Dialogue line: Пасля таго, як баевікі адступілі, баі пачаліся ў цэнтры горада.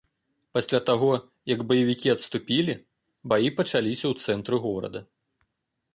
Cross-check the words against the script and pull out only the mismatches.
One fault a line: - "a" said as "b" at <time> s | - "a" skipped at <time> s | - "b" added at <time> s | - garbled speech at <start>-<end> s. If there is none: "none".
none